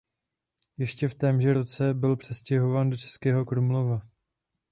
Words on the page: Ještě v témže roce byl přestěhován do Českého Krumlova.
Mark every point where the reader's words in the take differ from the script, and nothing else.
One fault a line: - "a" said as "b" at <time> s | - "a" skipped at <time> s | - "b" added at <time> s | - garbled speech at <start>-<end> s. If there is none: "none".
none